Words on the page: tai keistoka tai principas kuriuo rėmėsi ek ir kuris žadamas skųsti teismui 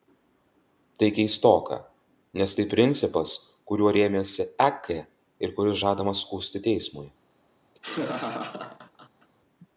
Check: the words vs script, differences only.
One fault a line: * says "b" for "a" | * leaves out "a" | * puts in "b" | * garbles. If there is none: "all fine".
* puts in "nes"